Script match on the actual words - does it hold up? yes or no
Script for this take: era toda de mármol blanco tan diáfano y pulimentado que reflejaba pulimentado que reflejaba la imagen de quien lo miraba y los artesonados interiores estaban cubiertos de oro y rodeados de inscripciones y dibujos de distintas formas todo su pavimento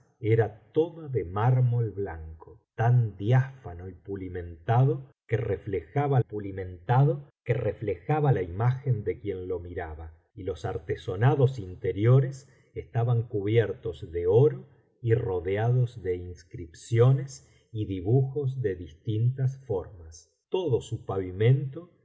yes